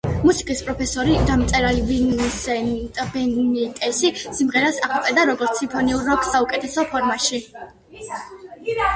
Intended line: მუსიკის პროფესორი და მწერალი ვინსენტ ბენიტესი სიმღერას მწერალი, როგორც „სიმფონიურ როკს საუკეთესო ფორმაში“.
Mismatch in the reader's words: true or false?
true